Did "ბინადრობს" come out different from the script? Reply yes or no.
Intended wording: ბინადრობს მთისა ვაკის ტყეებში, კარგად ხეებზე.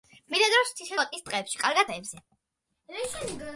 no